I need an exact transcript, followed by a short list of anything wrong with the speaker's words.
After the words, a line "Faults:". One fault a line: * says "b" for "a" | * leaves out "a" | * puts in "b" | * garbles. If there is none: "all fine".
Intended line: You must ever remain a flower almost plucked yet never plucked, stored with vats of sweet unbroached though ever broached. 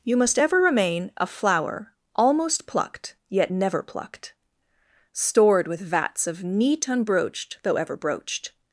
You must ever remain a flower almost plucked yet never plucked, stored with vats of neat unbroached though ever broached.
Faults:
* says "neat" for "sweet"